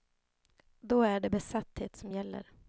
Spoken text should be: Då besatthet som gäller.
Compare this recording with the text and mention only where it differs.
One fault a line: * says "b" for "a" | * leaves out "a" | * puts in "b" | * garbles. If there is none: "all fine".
* puts in "är det"